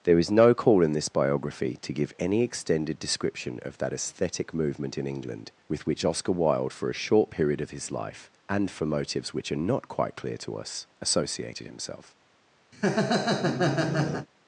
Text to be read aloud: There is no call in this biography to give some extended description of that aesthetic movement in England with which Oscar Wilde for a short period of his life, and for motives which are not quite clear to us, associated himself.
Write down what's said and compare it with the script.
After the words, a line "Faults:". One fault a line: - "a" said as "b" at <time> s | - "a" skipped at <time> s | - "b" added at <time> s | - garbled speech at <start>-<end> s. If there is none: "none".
There is no call in this biography to give any extended description of that aesthetic movement in England with which Oscar Wilde for a short period of his life, and for motives which are not quite clear to us, associated himself.
Faults:
- "some" said as "any" at 2.2 s